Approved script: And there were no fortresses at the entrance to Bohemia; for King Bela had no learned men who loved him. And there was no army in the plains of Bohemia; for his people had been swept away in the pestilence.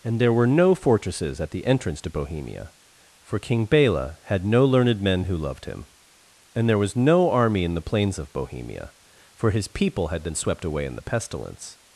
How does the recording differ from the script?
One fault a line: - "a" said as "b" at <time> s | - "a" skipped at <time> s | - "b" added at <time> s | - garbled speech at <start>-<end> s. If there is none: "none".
none